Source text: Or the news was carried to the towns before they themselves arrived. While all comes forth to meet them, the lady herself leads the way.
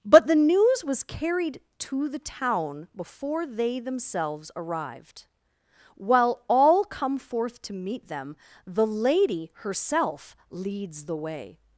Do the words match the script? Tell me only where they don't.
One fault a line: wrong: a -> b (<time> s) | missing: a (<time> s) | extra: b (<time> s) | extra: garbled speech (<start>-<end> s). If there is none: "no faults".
wrong: Or -> But (0.0 s)
wrong: towns -> town (2.2 s)
wrong: comes -> come (6.8 s)